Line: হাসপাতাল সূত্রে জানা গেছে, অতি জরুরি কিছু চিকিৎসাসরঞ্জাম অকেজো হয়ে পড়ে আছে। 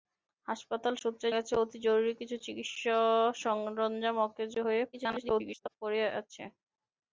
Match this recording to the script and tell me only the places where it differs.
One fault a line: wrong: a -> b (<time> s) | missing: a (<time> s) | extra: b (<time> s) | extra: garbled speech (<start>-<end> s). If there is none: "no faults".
missing: জানা (1.3 s)
extra: garbled speech (4.9-5.8 s)